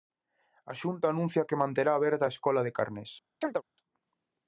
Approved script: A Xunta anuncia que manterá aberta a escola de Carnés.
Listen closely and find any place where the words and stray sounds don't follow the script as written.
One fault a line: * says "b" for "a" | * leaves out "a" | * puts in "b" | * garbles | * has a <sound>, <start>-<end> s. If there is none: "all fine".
* has a chirp, 3.4-3.6 s